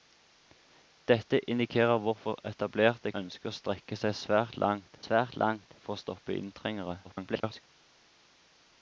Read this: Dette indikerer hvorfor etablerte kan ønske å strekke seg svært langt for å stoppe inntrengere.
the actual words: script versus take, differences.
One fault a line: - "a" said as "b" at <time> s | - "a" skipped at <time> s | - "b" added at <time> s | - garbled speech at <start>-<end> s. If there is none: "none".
- "kan" skipped at 3.1 s
- "svært langt" added at 5.0 s
- garbled speech at 7.0-7.6 s